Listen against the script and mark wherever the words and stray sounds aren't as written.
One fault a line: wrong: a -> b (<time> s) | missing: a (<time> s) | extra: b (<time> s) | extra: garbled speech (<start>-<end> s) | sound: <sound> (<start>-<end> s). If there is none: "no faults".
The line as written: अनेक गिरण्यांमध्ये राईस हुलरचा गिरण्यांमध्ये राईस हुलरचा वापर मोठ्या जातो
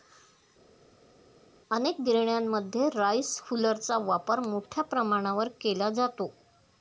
wrong: गिरण्यांमध्ये राईस हुलरचा वापर मोठ्या -> वापर मोठ्या प्रमाणावर केला (4.0 s)